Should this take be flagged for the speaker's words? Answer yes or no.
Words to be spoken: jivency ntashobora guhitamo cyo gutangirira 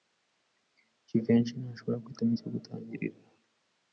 no